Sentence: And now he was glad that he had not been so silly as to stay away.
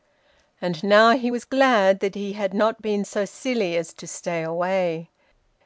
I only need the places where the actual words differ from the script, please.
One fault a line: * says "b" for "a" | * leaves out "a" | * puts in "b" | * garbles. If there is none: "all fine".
all fine